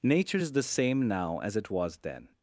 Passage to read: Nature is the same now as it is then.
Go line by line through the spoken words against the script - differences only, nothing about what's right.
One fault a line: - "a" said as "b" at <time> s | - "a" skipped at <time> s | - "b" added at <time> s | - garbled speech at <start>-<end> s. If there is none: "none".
- "is" said as "was" at 1.7 s